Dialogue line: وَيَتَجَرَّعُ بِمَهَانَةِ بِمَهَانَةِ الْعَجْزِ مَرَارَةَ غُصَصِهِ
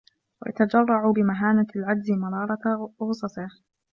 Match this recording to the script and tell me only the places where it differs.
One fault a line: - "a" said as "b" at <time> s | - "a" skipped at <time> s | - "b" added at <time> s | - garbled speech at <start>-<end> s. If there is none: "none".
- "بِمَهَانَةِ" skipped at 1.7 s